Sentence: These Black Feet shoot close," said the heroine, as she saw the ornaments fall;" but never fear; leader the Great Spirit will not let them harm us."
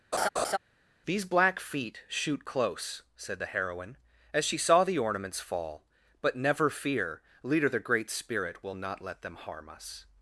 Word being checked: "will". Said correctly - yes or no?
yes